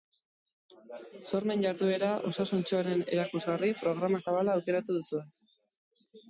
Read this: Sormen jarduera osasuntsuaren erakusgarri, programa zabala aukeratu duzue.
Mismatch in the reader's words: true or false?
false